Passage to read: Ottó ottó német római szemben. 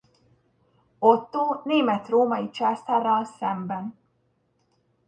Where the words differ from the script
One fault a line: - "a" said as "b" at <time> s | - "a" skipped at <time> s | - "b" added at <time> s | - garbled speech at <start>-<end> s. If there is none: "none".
- "ottó" skipped at 1.6 s
- "császárral" added at 2.5 s